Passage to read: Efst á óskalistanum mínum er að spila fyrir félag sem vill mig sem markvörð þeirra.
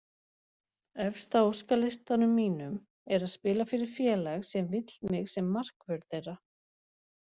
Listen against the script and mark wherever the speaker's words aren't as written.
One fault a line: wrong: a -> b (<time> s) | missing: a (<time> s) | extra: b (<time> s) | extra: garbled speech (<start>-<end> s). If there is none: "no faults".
no faults